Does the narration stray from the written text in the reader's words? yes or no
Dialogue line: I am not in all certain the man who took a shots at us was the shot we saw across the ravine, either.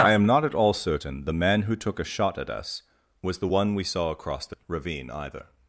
yes